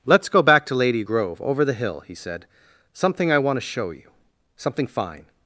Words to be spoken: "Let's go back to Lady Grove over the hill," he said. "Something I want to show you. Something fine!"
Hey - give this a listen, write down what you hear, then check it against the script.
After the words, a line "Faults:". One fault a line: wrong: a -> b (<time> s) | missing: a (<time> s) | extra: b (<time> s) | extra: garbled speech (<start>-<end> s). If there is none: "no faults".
"Let's go back to Lady Grove over the hill," he said. "Something I want to show you. Something fine!"
Faults:
no faults